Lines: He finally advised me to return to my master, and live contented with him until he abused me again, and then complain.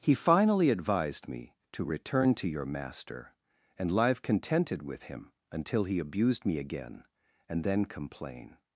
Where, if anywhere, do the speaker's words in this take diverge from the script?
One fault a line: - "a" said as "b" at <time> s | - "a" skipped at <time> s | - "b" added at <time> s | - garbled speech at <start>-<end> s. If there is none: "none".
- "my" said as "your" at 2.5 s